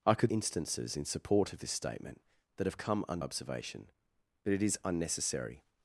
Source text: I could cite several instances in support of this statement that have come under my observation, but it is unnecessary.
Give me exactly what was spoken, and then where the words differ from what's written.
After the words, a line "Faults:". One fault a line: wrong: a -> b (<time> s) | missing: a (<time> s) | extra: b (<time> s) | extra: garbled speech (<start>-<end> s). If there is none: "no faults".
I could instances in support of this statement that have come under observation, but it is unnecessary.
Faults:
missing: cite several (0.3 s)
missing: my (3.2 s)